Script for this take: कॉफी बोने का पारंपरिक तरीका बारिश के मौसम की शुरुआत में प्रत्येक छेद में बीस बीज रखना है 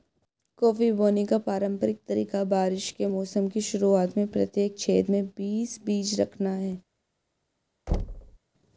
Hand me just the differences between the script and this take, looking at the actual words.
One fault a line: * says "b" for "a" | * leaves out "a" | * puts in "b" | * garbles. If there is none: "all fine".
all fine